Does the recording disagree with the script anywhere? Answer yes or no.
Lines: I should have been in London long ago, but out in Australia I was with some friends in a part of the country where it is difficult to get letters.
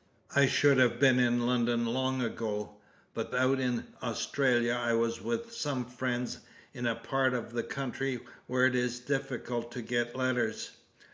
no